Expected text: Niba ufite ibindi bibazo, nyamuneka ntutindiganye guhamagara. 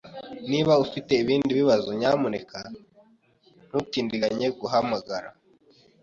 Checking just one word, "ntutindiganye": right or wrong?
right